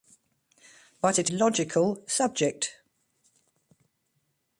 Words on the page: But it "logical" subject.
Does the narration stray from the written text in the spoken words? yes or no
no